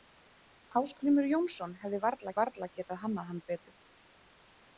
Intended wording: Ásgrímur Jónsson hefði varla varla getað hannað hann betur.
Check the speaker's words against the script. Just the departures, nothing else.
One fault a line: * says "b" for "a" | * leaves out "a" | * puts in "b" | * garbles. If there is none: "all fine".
all fine